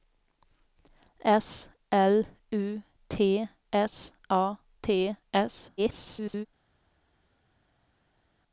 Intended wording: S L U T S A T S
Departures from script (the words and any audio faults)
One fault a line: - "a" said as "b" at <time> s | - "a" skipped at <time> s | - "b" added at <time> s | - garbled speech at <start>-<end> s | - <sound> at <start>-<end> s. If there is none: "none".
- garbled speech at 5.8-6.5 s